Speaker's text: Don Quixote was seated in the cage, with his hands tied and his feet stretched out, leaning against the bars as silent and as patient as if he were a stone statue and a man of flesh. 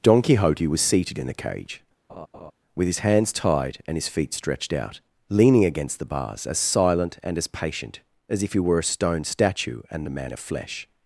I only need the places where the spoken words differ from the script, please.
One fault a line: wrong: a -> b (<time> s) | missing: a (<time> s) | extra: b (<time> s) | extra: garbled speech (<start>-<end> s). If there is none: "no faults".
no faults